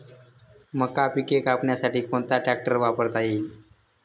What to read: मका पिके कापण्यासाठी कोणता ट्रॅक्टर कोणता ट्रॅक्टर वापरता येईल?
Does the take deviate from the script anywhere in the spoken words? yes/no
yes